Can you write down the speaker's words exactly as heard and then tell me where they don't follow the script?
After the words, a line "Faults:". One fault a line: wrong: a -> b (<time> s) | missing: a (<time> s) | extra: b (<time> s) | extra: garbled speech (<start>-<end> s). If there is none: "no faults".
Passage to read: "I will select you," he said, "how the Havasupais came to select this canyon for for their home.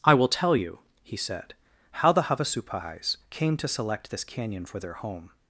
"I will tell you," he said, "how the Havasupais came to select this canyon for their home.
Faults:
wrong: select -> tell (0.3 s)
missing: for (4.8 s)